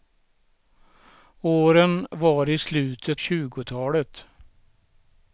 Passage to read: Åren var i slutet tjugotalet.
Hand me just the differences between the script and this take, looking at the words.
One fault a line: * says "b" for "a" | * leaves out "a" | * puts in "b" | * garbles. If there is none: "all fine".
all fine